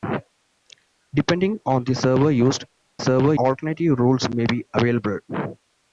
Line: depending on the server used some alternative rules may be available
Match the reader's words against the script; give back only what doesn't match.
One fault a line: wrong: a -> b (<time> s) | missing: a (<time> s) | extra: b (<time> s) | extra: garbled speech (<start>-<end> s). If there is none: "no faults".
wrong: some -> server (3.0 s)